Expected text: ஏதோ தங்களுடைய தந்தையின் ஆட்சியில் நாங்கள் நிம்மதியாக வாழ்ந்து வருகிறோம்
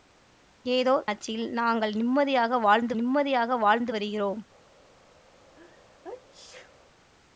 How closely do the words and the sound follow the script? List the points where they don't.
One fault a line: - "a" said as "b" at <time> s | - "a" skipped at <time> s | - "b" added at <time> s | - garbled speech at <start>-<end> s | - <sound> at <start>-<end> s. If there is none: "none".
- "தங்களுடைய தந்தையின் ஆட்சியில் நாங்கள்" said as "ஆட்சியில் நாங்கள் நிம்மதியாக வாழ்ந்து" at 1.0 s
- sneeze at 5.5-6.7 s